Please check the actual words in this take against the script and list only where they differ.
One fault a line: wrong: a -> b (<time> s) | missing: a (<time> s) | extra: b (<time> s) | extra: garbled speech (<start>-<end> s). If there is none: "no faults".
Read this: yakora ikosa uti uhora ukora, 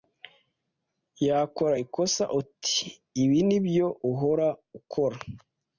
extra: ibi nibyo (3.2 s)